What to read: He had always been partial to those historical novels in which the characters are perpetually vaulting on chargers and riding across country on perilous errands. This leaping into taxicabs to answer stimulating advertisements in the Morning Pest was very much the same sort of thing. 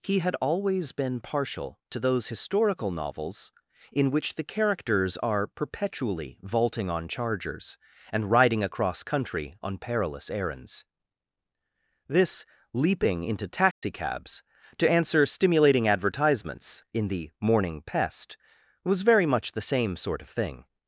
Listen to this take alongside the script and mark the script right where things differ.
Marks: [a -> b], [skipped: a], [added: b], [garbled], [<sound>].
He had always been partial to those historical novels in which the characters are perpetually vaulting on chargers and riding across country on perilous errands. This leaping into taxicabs [dropout] to answer stimulating advertisements in the Morning Pest was very much the same sort of thing.